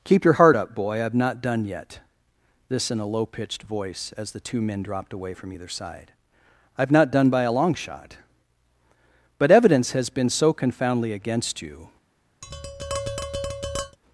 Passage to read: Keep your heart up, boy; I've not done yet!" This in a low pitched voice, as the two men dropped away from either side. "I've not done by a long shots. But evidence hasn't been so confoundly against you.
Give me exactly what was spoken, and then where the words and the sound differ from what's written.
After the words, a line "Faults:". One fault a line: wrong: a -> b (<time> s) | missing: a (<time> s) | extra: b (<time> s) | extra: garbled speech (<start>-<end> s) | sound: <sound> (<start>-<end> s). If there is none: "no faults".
Keep your heart up, boy; I've not done yet!" This in a low pitched voice, as the two men dropped away from either side. "I've not done by a long shot. But evidence has been so confoundly against you.
Faults:
wrong: shots -> shot (7.7 s)
wrong: hasn't -> has (9.9 s)
sound: tap (12.4-14.0 s)